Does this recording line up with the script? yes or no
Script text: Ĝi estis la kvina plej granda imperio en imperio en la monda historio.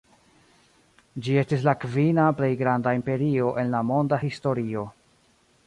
no